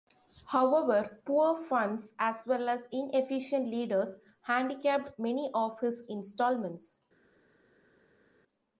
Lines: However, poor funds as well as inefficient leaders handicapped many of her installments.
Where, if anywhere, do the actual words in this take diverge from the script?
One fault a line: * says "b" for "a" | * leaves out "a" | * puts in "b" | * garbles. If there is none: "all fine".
* says "his" for "her"